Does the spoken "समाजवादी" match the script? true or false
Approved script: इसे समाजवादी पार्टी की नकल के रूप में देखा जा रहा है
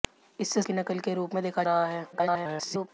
false